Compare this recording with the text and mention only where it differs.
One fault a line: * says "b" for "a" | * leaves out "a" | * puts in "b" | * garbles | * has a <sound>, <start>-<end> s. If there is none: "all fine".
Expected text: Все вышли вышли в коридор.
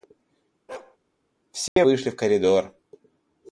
* has a bark, 0.7-1.0 s
* has a dropout, 1.7-1.8 s
* leaves out "вышли"